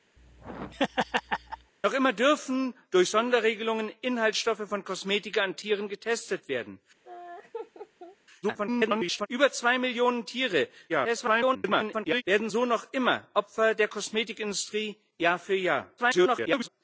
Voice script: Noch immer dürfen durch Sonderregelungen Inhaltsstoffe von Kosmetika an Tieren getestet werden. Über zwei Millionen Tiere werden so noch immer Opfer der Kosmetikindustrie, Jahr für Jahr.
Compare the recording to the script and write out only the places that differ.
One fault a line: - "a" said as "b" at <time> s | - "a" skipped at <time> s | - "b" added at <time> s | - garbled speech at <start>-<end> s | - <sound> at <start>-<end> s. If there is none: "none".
- laugh at 0.2-1.7 s
- laugh at 7.0-8.2 s
- garbled speech at 8.4-9.3 s
- garbled speech at 10.9-12.2 s
- garbled speech at 16.0-16.7 s